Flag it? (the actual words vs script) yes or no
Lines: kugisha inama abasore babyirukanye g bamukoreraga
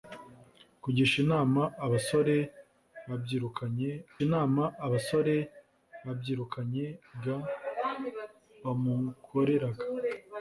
yes